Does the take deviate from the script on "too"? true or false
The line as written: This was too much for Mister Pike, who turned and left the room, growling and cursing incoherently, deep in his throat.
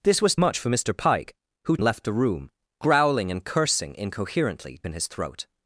true